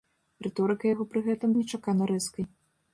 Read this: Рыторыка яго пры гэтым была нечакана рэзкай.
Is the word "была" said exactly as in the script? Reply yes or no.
no